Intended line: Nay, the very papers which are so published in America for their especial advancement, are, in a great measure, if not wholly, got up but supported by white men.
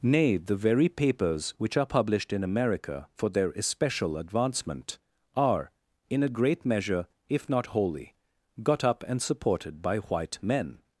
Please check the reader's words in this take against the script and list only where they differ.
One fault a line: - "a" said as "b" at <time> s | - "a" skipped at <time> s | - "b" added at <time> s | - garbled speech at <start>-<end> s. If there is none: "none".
- "so" skipped at 1.9 s
- "but" said as "and" at 9.1 s